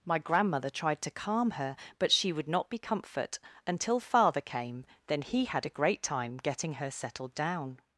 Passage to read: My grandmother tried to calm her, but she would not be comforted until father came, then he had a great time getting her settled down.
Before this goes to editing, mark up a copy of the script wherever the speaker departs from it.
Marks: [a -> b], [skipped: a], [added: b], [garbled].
My grandmother tried to calm her, but she would not be [comforted -> comfort] until father came, then he had a great time getting her settled down.